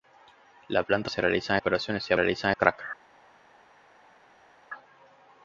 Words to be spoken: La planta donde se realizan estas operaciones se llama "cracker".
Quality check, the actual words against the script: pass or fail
fail